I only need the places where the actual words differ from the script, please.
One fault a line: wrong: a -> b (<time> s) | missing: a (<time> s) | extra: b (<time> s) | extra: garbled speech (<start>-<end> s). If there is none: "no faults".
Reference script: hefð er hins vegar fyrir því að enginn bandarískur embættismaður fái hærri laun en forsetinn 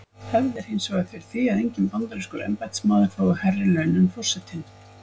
no faults